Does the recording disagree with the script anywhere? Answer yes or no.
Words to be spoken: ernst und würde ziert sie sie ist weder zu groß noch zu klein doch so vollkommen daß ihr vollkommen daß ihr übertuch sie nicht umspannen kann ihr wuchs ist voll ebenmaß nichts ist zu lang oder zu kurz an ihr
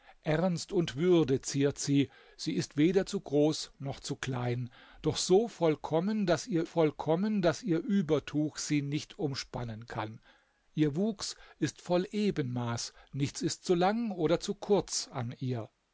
no